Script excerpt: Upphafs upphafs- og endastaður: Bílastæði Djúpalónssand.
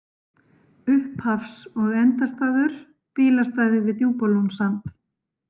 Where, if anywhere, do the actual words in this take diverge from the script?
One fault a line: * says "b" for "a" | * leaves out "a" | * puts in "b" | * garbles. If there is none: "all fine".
* leaves out "upphafs"
* puts in "við"